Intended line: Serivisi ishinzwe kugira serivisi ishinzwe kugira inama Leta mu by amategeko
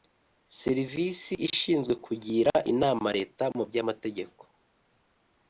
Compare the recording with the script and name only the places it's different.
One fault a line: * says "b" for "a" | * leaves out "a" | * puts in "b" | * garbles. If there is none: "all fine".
* leaves out "serivisi ishinzwe kugira"